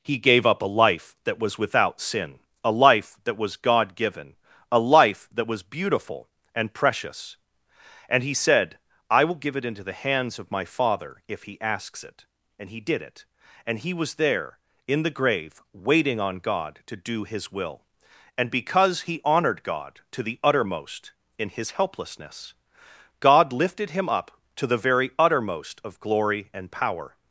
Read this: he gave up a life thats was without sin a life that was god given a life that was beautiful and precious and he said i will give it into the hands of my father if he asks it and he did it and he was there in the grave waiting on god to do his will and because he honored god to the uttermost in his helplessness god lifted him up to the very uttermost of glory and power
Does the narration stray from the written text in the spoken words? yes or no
yes